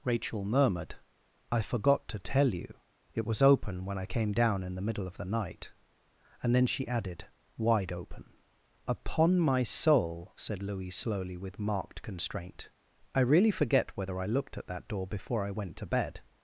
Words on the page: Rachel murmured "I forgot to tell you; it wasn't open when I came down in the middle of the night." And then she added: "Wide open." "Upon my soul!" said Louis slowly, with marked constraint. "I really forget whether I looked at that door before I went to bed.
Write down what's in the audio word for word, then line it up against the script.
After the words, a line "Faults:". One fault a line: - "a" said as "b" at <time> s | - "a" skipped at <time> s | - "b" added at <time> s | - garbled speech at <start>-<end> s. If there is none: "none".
Rachel murmured "I forgot to tell you; it was open when I came down in the middle of the night." And then she added: "Wide open." "Upon my soul!" said Louis slowly, with marked constraint. "I really forget whether I looked at that door before I went to bed.
Faults:
- "wasn't" said as "was" at 3.2 s